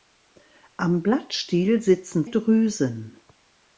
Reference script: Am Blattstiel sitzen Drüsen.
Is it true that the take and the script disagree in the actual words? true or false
false